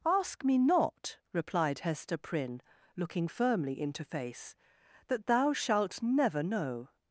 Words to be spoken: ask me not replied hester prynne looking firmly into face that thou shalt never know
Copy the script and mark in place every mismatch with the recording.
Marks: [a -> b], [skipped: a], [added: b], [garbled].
ask me not replied hester prynne looking firmly into face that thou shalt never know